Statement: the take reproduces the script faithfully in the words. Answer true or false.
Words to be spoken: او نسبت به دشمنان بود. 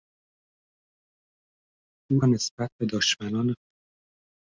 true